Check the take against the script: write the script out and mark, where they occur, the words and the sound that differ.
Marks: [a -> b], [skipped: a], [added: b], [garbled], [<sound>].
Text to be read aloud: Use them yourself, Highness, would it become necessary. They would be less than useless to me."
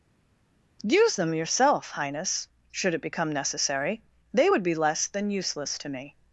Use them yourself, Highness, [would -> should] it become necessary. They would be less than useless to me."